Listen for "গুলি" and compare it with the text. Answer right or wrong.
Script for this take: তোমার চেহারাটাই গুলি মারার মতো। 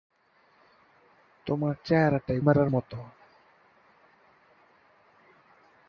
wrong